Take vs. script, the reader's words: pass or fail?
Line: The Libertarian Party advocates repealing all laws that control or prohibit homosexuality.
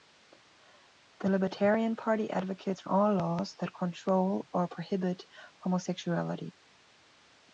fail